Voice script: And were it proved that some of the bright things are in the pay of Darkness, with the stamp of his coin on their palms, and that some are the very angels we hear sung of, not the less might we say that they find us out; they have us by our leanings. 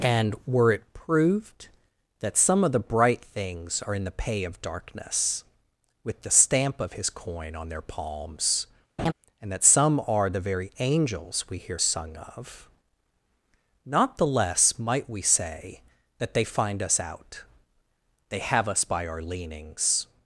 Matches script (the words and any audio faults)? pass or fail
fail